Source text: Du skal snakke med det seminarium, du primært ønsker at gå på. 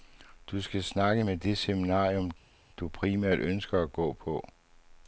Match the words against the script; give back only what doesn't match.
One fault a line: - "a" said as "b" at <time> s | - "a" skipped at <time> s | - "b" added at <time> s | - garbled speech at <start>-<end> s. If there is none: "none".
none